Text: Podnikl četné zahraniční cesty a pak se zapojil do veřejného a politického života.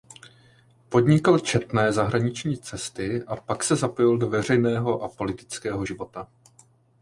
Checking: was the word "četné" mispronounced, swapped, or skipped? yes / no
no